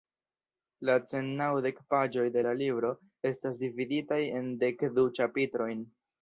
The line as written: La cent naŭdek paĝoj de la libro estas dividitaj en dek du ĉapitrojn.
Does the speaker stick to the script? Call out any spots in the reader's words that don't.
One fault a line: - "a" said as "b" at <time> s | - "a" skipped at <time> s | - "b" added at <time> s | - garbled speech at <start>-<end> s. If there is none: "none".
none